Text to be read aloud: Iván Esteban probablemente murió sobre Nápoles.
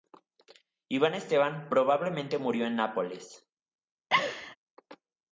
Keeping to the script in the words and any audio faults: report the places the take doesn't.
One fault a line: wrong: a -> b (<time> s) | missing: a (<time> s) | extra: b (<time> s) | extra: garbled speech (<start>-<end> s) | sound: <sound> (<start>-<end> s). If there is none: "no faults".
wrong: sobre -> en (2.6 s)
sound: laugh (4.1-4.6 s)